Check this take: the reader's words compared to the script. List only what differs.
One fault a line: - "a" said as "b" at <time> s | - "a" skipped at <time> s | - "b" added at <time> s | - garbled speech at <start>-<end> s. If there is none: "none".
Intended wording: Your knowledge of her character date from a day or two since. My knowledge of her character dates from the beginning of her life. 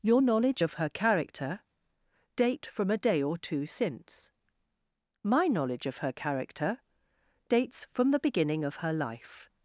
none